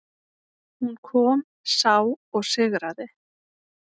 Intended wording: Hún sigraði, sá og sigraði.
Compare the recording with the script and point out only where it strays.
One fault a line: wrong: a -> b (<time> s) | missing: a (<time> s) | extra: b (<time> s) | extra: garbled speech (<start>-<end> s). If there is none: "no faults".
wrong: sigraði -> kom (1.1 s)